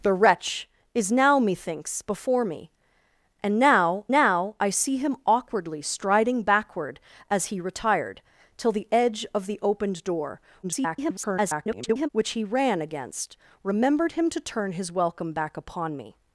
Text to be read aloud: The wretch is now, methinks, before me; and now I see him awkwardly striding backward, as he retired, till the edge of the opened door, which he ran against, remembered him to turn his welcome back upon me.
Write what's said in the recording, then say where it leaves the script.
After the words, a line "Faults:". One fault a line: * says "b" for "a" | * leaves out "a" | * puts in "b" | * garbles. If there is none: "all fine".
The wretch is now, methinks, before me; and now now I see him awkwardly striding backward, as he retired, till the edge of the opened door, [garbled] which he ran against, remembered him to turn his welcome back upon me.
Faults:
* puts in "now"
* garbles